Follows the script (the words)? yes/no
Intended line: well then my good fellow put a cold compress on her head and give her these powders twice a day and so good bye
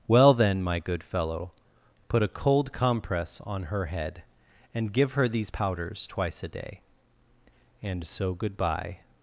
yes